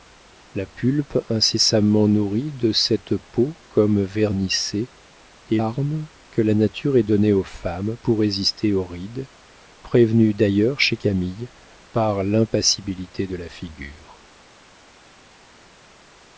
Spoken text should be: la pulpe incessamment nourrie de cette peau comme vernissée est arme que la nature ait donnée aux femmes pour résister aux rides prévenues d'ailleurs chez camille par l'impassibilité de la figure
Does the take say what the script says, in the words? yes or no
yes